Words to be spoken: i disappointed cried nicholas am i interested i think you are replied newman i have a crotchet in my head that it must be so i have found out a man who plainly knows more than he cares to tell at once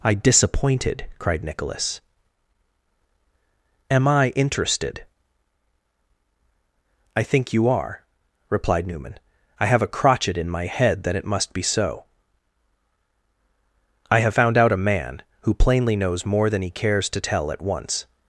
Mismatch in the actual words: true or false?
false